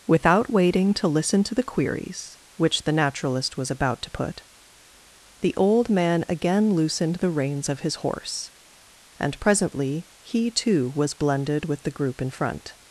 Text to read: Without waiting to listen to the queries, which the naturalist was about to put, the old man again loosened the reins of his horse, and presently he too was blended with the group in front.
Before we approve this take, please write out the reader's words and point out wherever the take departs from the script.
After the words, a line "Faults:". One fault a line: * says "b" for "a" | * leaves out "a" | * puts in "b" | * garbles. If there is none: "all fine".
Without waiting to listen to the queries, which the naturalist was about to put, the old man again loosened the reins of his horse, and presently he too was blended with the group in front.
Faults:
all fine